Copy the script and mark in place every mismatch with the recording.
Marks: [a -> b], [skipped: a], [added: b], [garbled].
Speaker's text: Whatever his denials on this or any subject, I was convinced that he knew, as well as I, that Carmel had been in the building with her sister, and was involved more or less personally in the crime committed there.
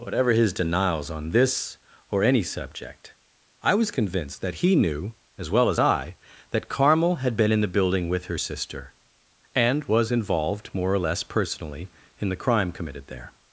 Whatever his denials on this or any subject, I was convinced that he knew, as well as I, that Carmel had been in the building with her sister, and was involved more or less personally in the crime committed there.